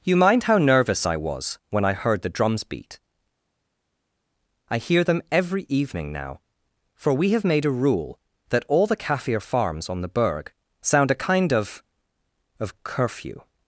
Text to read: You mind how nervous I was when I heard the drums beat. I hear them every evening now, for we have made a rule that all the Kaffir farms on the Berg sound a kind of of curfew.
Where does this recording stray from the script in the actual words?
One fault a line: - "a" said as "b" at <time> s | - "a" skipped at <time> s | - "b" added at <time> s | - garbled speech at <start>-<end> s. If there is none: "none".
none